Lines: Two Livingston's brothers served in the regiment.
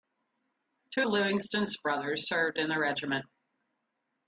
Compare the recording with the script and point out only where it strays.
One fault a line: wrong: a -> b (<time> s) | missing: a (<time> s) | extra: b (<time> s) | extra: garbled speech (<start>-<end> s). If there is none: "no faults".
no faults